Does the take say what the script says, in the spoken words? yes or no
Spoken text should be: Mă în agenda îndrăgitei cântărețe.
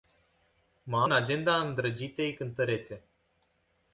yes